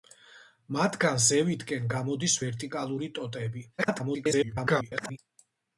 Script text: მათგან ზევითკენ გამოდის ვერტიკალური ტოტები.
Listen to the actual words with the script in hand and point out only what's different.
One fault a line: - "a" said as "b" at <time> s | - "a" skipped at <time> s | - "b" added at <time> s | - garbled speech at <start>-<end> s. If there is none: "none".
- garbled speech at 3.8-5.2 s